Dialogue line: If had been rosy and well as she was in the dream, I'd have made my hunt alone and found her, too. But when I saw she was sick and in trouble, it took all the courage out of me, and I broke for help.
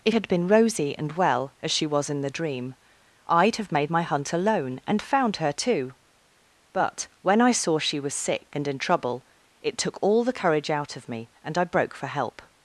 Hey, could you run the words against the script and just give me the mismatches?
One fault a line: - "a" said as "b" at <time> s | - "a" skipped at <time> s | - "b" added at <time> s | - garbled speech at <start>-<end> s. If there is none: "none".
none